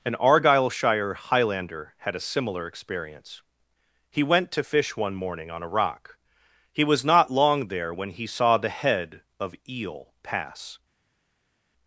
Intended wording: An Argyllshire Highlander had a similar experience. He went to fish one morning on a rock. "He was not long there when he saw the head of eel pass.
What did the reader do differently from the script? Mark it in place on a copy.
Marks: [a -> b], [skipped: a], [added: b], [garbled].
An Argyllshire Highlander had a similar experience. He went to fish one morning on a rock. "He was not long there when he saw the head of eel pass.